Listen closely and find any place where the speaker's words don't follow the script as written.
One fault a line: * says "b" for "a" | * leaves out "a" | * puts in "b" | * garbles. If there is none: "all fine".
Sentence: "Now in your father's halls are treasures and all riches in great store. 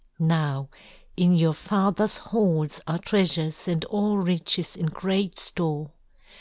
all fine